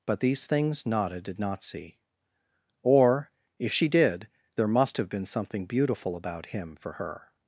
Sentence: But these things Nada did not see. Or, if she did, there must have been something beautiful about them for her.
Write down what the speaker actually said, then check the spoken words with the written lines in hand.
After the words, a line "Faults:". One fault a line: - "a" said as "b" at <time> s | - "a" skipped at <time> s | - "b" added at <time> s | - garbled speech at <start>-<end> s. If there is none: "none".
But these things Nada did not see. Or, if she did, there must have been something beautiful about him for her.
Faults:
- "them" said as "him" at 6.5 s